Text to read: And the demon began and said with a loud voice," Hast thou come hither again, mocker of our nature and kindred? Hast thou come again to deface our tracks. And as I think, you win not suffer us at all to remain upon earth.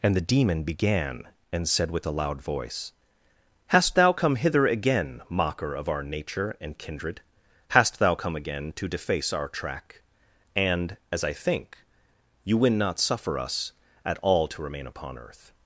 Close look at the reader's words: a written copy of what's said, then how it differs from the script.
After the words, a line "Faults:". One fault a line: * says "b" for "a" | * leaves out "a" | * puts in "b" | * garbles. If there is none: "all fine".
And the demon began and said with a loud voice," Hast thou come hither again, mocker of our nature and kindred? Hast thou come again to deface our track. And as I think, you win not suffer us at all to remain upon earth.
Faults:
* says "track" for "tracks"